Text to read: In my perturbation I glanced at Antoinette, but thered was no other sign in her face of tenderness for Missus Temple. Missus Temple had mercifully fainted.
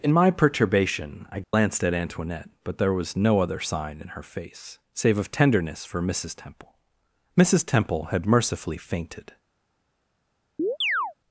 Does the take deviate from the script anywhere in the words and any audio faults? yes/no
yes